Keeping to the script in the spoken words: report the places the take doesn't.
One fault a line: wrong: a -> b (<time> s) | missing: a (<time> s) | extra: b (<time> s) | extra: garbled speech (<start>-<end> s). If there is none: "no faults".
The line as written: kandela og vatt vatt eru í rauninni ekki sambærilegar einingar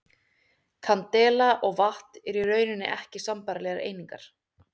missing: vatt (2.2 s)